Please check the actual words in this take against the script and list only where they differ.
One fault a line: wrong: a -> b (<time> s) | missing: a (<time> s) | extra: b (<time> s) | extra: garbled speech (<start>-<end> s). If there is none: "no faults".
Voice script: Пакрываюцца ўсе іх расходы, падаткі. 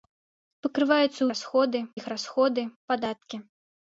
wrong: ўсе -> расходы (1.3 s)